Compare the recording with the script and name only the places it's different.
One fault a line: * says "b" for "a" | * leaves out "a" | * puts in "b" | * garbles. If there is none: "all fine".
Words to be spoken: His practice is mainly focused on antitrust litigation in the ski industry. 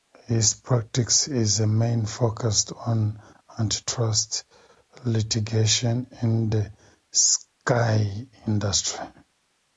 all fine